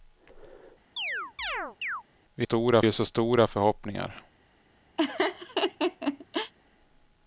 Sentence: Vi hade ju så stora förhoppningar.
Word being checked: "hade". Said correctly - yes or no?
no